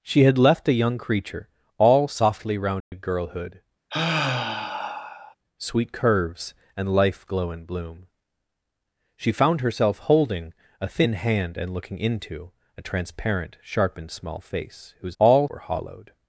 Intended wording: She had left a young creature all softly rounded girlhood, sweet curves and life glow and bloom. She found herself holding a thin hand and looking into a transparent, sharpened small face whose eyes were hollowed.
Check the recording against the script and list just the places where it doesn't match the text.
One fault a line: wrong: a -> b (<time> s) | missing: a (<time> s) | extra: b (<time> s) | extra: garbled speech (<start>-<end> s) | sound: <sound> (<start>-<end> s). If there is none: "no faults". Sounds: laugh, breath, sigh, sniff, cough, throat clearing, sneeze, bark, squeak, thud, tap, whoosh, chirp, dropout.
sound: dropout (2.8-2.9 s)
sound: sigh (3.9-5.3 s)
wrong: eyes -> all (15.2 s)